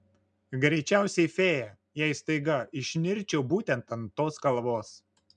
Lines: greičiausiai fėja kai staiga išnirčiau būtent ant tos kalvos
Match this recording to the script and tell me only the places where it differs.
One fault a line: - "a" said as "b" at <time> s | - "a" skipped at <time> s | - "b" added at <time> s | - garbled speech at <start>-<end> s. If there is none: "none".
- "kai" said as "jei" at 2.0 s